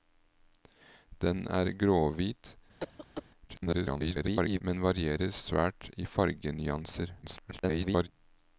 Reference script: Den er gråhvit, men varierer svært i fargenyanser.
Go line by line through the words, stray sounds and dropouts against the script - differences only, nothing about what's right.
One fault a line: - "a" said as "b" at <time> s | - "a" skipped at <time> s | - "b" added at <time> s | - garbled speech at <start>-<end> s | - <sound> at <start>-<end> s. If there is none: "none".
- cough at 2.8-3.2 s
- garbled speech at 3.5-4.6 s
- garbled speech at 7.2-8.1 s